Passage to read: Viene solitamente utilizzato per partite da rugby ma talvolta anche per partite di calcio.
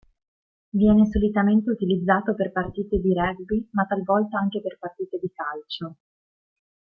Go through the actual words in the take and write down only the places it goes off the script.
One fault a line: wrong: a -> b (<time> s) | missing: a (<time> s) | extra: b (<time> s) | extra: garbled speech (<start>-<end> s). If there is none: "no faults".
wrong: da -> di (3.0 s)